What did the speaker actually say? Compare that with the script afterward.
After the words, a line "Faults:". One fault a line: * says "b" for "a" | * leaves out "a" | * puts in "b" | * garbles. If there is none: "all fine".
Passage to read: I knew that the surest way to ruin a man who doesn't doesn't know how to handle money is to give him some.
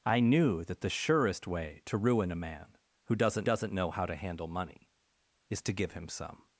I knew that the surest way to ruin a man who doesn't doesn't know how to handle money is to give him some.
Faults:
all fine